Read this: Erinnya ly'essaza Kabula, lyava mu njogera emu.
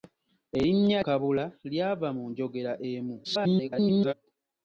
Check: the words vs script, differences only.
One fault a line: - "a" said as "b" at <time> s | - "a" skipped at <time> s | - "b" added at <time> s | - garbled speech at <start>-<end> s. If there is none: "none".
- "ly'essaza" skipped at 1.0 s
- garbled speech at 3.2-4.1 s